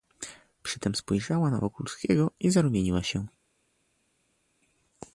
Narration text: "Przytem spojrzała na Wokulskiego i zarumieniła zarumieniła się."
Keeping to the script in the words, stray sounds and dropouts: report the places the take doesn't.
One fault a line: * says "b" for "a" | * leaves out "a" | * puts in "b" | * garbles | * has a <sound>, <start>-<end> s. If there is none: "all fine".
* leaves out "zarumieniła"